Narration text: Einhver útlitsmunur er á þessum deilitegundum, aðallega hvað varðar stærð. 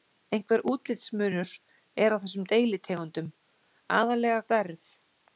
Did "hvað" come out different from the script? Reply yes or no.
yes